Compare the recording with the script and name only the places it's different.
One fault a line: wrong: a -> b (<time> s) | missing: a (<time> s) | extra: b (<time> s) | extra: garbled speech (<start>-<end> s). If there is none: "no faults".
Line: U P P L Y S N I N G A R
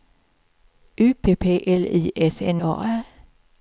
missing: I N G (2.6 s)